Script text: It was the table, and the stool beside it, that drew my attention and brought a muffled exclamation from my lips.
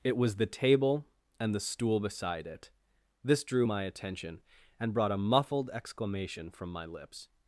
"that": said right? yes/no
no